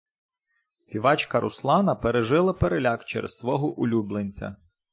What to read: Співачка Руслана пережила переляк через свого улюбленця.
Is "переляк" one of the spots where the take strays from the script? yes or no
no